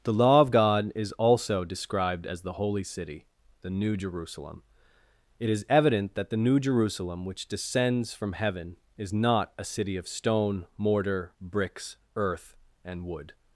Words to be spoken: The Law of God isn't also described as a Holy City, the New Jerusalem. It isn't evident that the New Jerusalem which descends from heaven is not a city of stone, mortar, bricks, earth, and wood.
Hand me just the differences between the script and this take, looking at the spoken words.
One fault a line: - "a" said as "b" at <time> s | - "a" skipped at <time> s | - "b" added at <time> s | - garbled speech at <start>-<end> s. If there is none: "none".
- "isn't" said as "is" at 0.9 s
- "a" said as "the" at 2.4 s
- "isn't" said as "is" at 5.5 s